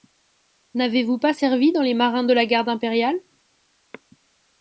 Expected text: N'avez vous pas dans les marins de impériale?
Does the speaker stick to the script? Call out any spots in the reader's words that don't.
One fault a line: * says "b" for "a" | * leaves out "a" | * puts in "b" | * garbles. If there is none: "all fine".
* puts in "servi"
* puts in "la garde"